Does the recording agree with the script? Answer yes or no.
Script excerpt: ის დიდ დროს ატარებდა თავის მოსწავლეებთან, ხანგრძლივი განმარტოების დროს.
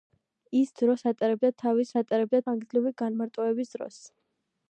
no